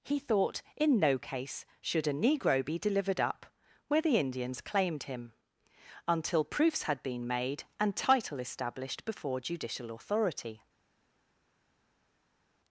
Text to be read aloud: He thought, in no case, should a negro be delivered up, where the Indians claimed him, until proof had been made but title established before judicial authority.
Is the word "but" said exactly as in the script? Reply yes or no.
no